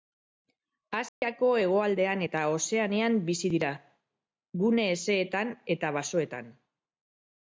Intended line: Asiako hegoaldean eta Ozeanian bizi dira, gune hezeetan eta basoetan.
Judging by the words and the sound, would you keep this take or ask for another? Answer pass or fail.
fail